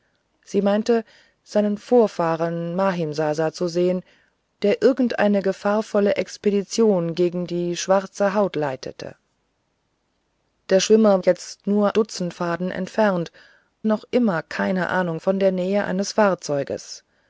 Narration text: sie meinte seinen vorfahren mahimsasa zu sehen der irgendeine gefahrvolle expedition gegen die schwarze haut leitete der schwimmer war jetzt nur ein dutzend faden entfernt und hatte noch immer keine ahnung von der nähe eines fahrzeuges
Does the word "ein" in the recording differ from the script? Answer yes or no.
yes